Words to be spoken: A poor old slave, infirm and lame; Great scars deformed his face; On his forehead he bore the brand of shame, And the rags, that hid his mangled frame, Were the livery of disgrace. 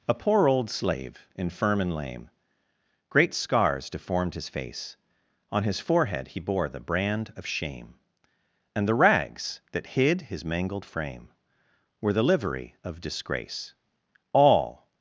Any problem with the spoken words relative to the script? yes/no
yes